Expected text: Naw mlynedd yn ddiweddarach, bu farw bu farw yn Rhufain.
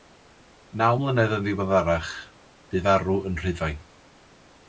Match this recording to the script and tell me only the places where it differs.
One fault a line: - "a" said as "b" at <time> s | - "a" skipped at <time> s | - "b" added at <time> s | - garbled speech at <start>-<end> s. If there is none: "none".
- "bu farw" skipped at 3.2 s